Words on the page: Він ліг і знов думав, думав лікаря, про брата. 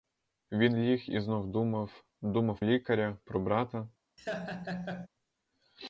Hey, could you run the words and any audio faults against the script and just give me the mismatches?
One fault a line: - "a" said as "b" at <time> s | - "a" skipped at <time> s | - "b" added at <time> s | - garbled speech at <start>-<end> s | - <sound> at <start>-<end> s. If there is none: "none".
- laugh at 4.2-5.1 s